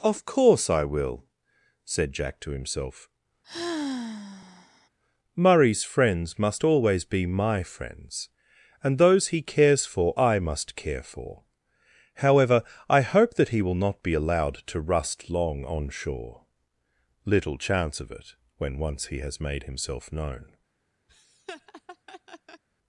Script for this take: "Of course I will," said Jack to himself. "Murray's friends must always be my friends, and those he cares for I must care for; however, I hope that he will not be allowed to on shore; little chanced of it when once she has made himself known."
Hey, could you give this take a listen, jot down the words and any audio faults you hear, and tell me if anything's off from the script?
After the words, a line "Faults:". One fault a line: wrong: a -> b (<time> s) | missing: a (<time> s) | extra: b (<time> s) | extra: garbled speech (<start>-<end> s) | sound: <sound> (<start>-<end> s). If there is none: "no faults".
"Of course I will," said Jack to himself. "Murray's friends must always be my friends, and those he cares for I must care for; however, I hope that he will not be allowed to rust long on shore; little chance of it when once he has made himself known."
Faults:
sound: sigh (3.4-4.9 s)
extra: rust long (14.8 s)
wrong: chanced -> chance (17.6 s)
wrong: she -> he (19.1 s)
sound: laugh (21.1-22.6 s)